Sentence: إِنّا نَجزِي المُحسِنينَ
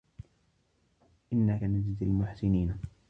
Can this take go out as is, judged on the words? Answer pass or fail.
pass